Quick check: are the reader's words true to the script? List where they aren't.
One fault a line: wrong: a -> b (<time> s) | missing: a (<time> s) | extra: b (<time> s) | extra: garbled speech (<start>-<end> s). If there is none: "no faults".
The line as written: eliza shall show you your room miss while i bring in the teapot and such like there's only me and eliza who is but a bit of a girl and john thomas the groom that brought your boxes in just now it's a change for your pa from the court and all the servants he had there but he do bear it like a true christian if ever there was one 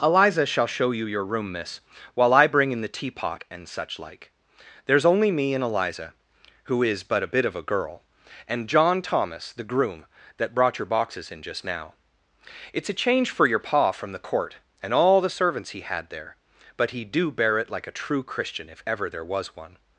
no faults